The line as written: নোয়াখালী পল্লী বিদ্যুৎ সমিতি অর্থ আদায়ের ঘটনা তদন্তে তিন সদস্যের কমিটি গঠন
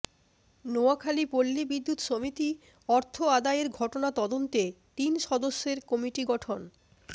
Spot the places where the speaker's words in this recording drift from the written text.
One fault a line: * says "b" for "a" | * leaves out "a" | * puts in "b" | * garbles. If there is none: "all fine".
all fine